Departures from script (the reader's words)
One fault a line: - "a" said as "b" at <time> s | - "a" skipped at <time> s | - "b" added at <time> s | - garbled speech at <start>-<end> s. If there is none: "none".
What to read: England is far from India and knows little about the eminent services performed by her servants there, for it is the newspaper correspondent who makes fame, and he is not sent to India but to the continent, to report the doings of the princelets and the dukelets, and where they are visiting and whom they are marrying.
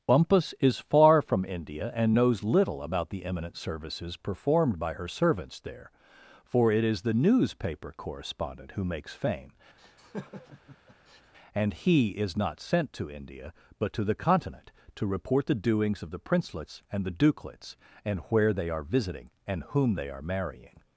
- "England" said as "Bumpus" at 0.1 s